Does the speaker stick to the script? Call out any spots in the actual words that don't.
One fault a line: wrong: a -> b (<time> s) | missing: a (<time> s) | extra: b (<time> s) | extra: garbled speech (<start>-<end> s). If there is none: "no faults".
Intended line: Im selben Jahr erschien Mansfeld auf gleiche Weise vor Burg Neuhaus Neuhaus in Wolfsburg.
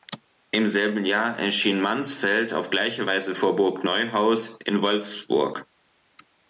missing: Neuhaus (4.6 s)